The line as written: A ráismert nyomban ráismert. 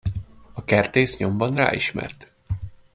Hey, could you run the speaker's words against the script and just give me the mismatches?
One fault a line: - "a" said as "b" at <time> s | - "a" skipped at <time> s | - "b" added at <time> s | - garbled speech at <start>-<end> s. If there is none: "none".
- "ráismert" said as "kertész" at 0.6 s